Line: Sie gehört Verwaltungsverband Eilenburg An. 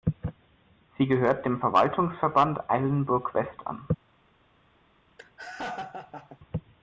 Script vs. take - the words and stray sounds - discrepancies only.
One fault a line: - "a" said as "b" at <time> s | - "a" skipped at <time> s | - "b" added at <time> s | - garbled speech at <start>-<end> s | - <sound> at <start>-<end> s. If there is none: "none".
- "dem" added at 1.4 s
- "West" added at 3.3 s
- laugh at 5.2-6.4 s